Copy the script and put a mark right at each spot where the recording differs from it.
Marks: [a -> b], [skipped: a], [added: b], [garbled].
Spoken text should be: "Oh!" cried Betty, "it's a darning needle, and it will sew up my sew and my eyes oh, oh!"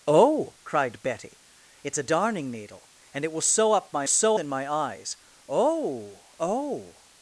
"Oh!" cried Betty, "it's a darning needle, and it will sew up my sew and my eyes oh, oh!"